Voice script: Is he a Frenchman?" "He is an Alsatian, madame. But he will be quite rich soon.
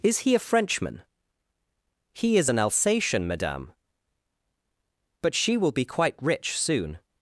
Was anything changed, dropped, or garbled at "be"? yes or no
no